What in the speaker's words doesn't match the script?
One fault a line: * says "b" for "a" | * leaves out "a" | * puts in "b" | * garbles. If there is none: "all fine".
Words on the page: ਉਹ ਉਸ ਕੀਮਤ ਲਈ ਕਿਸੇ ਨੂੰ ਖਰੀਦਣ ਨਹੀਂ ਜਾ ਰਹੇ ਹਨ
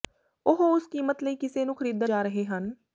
* leaves out "ਨਹੀਂ"